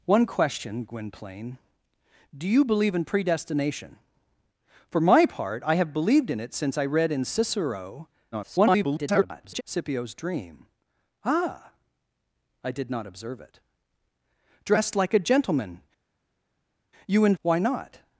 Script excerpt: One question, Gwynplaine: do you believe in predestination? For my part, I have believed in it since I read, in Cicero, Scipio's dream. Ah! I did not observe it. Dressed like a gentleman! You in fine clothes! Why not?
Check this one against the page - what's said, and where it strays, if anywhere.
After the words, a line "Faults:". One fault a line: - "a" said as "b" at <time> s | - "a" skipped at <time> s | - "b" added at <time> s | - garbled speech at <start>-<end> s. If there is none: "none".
One question, Gwynplaine: do you believe in predestination? For my part, I have believed in it since I read, in Cicero, [garbled] Scipio's dream. Ah! I did not observe it. Dressed like a gentleman! You in! Why not?
Faults:
- garbled speech at 8.3-9.6 s
- "fine clothes" skipped at 17.3 s